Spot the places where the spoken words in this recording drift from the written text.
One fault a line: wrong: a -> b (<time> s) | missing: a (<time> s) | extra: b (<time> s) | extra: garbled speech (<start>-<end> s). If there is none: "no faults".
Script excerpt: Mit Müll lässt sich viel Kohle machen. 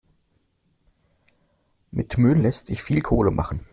no faults